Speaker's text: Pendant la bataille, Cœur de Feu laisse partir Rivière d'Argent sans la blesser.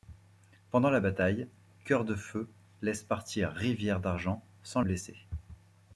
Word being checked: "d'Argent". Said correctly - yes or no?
yes